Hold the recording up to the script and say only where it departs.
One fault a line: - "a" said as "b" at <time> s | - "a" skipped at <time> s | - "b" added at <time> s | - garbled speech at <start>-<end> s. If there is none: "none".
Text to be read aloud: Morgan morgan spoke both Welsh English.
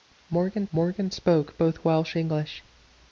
none